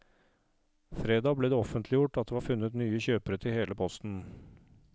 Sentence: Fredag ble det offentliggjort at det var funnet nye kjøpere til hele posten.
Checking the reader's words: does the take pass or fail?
pass